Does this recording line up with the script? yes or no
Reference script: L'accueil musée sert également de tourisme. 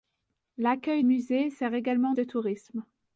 yes